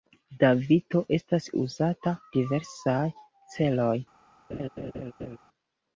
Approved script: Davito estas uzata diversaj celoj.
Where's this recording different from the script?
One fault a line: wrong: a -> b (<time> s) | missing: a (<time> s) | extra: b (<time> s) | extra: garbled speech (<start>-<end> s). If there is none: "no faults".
no faults